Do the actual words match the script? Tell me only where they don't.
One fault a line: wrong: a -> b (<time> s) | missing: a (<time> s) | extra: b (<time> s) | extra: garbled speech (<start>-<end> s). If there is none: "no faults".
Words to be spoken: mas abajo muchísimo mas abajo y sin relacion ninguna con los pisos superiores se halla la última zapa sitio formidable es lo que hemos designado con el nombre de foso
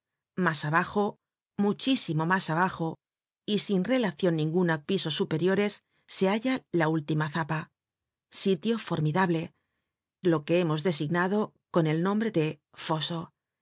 missing: con los (4.8 s)
missing: es (9.5 s)